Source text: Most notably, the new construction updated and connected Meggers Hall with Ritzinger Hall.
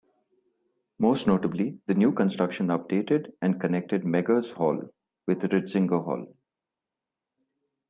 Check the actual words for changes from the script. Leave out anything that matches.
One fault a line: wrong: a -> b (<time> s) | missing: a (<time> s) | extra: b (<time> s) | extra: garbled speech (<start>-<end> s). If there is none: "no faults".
no faults